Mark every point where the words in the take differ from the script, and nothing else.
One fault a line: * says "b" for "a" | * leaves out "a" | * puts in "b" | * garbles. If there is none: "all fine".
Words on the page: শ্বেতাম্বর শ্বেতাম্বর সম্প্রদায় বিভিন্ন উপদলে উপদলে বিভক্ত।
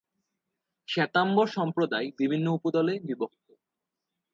* leaves out "শ্বেতাম্বর"
* leaves out "উপদলে"